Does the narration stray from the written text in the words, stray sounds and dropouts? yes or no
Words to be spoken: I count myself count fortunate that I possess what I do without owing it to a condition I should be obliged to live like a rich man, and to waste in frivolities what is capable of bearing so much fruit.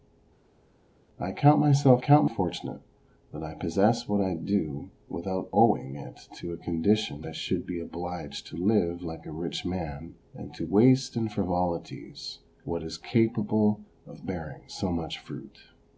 no